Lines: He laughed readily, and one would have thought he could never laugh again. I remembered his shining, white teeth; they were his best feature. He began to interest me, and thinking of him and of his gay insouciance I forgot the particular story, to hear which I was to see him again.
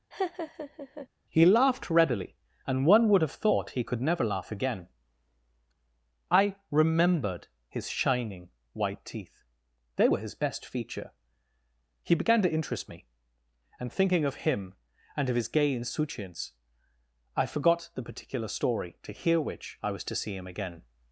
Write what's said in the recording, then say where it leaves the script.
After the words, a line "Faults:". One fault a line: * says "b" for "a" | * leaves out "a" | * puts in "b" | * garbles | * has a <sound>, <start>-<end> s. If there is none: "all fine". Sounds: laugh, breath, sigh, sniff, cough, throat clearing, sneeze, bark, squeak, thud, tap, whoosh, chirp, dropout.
He laughed readily, and one would have thought he could never laugh again. I remembered his shining, white teeth; they were his best feature. He began to interest me, and thinking of him and of his gay insouciance I forgot the particular story, to hear which I was to see him again.
Faults:
* has a laugh, 0.1-1.1 s